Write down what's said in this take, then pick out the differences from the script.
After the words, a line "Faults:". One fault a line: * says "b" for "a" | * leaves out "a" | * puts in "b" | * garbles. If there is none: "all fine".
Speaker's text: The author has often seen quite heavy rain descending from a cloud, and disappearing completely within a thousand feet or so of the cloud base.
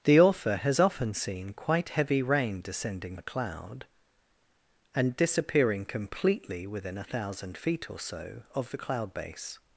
The author has often seen quite heavy rain descending a cloud, and disappearing completely within a thousand feet or so of the cloud base.
Faults:
* leaves out "from"